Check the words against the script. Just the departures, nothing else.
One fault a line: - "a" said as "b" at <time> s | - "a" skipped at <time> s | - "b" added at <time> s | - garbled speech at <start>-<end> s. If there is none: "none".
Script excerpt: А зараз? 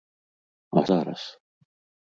none